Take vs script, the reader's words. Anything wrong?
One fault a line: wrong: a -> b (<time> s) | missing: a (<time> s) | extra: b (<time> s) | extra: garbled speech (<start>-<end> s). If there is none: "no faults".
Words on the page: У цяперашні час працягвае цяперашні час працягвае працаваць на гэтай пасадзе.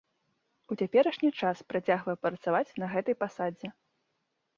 missing: цяперашні час працягвае (2.1 s)